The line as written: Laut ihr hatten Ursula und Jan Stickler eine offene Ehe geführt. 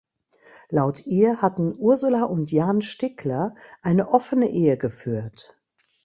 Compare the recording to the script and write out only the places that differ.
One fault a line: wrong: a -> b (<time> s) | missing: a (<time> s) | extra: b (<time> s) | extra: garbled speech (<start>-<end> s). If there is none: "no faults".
no faults